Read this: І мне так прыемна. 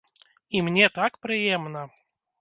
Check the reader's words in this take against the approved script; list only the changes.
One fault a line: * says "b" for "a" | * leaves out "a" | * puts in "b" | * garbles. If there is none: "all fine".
all fine